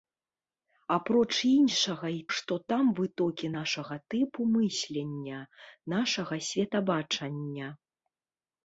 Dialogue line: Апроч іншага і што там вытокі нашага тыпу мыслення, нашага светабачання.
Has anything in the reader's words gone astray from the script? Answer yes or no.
no